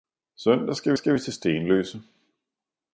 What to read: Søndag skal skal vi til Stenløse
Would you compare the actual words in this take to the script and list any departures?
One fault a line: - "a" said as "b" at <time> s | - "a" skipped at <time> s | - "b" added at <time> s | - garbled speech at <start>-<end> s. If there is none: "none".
none